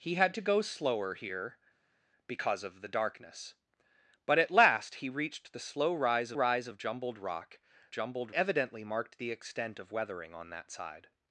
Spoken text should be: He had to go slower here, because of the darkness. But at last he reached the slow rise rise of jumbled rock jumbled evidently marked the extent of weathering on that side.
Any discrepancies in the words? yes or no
no